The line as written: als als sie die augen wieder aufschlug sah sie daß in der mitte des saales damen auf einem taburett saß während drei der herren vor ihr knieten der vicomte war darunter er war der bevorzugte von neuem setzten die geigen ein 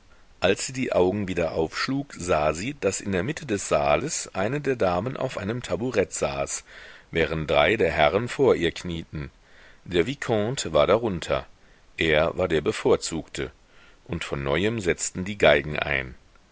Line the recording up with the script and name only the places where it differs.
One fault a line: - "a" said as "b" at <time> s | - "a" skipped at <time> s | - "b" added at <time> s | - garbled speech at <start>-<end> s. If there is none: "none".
- "als" skipped at 0.7 s
- "eine der" added at 4.3 s
- "und" added at 14.0 s